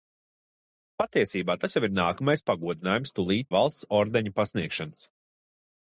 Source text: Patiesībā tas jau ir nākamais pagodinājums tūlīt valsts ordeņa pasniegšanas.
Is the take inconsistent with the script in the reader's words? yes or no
no